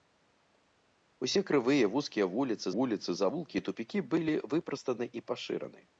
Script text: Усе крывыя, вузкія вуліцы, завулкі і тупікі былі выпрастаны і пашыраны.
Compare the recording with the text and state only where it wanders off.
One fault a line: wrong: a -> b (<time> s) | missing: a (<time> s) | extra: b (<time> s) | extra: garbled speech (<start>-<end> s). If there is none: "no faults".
extra: вуліцы (2.7 s)